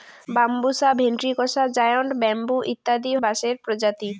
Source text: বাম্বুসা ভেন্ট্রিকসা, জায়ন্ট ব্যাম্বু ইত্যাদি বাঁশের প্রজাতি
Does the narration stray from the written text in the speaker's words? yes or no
no